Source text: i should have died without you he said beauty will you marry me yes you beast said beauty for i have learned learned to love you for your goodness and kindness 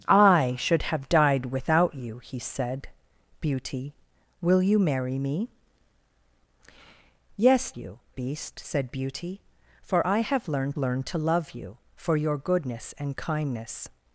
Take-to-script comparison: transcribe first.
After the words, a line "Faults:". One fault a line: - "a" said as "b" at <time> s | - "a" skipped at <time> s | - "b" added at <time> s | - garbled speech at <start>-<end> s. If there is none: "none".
i should have died without you he said beauty will you marry me yes you beast said beauty for i have learned learned to love you for your goodness and kindness
Faults:
none